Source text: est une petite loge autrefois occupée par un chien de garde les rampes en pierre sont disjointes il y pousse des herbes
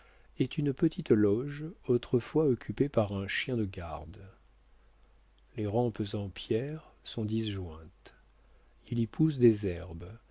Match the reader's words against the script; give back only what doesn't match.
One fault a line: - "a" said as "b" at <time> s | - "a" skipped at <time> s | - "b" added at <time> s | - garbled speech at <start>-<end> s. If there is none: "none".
none